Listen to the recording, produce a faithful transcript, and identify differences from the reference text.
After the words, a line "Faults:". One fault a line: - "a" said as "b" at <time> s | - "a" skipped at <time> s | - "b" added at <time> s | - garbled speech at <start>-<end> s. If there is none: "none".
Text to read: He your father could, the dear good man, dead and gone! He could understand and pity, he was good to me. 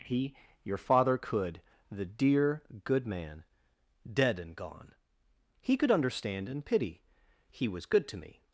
He your father could, the dear good man, dead and gone! He could understand and pity, he was good to me.
Faults:
none